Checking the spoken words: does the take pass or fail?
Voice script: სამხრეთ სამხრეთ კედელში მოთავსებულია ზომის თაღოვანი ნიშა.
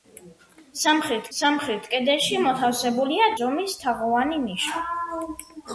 pass